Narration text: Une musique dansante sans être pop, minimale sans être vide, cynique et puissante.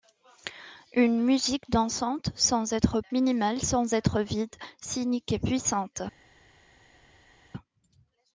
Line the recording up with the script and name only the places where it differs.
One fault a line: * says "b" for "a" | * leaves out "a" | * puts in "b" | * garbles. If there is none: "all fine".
* leaves out "pop"